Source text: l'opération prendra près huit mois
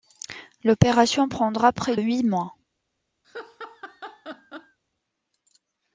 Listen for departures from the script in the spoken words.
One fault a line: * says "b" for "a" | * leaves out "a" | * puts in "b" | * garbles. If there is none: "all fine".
all fine